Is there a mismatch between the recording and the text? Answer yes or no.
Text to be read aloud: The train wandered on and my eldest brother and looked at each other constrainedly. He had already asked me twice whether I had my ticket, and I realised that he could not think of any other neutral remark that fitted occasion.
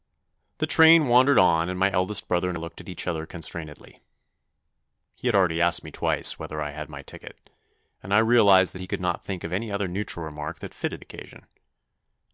no